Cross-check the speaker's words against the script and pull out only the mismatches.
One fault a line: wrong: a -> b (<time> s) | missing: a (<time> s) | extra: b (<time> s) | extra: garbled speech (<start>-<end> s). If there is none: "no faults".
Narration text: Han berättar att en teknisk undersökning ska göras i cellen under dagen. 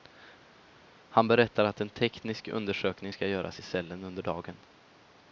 no faults